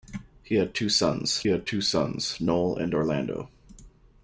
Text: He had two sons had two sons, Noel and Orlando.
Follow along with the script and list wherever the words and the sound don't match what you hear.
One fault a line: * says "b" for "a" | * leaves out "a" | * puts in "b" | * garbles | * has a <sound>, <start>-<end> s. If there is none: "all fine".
all fine